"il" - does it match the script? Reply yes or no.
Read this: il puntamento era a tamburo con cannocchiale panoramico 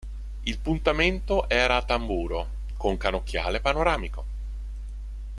yes